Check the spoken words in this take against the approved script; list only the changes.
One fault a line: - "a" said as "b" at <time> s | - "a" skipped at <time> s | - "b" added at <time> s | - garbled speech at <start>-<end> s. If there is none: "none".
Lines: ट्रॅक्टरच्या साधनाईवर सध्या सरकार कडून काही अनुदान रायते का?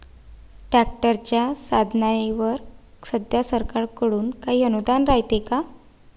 none